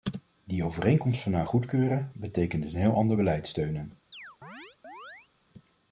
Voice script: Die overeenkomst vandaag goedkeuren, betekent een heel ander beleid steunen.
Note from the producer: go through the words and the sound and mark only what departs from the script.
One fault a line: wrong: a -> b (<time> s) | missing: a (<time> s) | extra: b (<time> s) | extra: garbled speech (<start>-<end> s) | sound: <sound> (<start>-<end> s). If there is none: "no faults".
sound: chirp (4.1-5.3 s)